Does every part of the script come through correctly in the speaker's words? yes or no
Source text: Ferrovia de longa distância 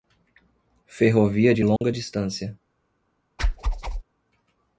yes